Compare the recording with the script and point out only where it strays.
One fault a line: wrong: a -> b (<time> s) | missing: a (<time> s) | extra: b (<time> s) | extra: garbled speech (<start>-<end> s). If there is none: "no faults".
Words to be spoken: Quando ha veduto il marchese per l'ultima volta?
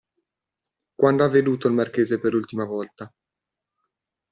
no faults